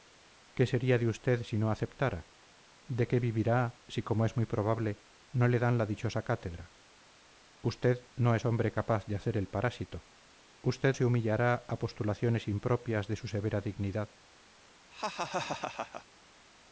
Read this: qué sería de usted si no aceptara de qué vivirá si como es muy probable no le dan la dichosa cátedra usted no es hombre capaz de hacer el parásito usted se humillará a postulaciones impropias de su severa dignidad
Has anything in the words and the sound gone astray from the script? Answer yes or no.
yes